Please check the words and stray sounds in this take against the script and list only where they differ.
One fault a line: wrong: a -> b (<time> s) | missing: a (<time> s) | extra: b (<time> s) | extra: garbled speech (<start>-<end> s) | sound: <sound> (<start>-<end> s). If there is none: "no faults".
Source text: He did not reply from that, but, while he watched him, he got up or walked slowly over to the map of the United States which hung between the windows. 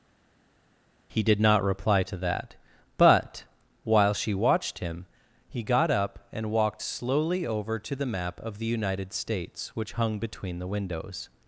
wrong: from -> to (2.0 s)
wrong: he -> she (4.1 s)
wrong: or -> and (6.3 s)